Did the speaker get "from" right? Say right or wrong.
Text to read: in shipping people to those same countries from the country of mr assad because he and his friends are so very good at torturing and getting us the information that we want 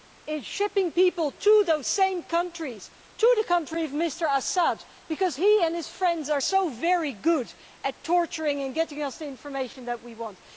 wrong